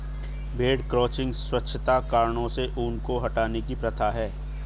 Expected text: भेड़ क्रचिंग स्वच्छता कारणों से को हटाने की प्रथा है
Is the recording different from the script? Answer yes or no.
yes